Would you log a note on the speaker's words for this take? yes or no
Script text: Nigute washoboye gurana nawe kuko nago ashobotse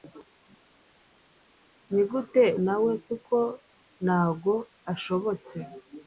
yes